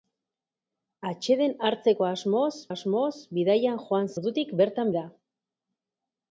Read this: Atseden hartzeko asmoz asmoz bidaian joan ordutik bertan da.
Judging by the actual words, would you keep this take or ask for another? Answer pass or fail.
pass